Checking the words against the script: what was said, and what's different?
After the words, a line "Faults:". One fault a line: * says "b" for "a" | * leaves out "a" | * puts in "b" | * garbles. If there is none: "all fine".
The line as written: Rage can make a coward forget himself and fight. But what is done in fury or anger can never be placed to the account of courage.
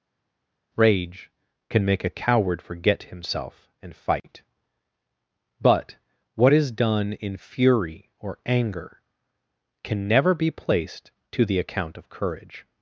Rage can make a coward forget himself and fight. But what is done in fury or anger can never be placed to the account of courage.
Faults:
all fine